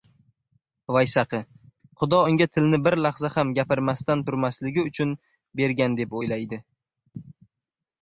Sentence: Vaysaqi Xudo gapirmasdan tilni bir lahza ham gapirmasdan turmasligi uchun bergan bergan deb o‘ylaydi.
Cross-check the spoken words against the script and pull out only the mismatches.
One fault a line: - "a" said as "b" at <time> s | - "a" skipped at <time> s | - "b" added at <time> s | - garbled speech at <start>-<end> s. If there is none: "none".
- "gapirmasdan" said as "unga" at 2.3 s
- "bergan" skipped at 6.0 s